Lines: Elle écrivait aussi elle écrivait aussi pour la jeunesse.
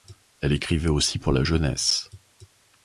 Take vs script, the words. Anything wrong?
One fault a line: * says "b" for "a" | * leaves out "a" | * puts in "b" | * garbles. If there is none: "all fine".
* leaves out "elle écrivait aussi"